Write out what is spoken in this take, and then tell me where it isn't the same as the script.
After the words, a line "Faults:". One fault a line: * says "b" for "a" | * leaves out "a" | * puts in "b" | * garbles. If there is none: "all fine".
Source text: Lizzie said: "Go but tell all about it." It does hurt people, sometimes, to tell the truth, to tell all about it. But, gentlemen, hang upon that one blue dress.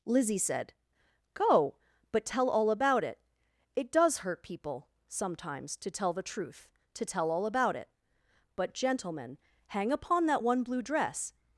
Lizzie said: "Go but tell all about it." It does hurt people, sometimes, to tell the truth, to tell all about it. But, gentlemen, hang upon that one blue dress.
Faults:
all fine